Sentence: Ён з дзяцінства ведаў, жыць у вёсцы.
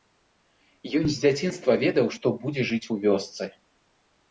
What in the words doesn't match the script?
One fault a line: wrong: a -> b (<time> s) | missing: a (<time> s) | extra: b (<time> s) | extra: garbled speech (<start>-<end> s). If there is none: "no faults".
extra: што будзе (2.2 s)